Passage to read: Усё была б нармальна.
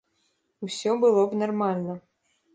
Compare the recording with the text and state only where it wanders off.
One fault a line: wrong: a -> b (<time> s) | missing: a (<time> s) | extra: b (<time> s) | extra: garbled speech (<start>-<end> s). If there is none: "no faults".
wrong: была -> было (1.0 s)